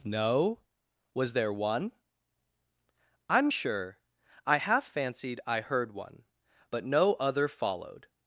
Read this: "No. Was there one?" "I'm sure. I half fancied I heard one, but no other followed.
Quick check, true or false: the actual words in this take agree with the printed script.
true